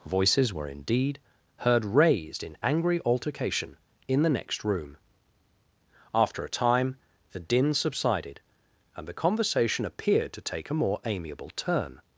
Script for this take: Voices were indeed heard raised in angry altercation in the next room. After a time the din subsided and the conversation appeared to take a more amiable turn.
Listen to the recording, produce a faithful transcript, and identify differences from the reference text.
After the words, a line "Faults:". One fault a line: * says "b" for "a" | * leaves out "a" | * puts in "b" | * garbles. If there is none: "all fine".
Voices were indeed heard raised in angry altercation in the next room. After a time the din subsided and the conversation appeared to take a more amiable turn.
Faults:
all fine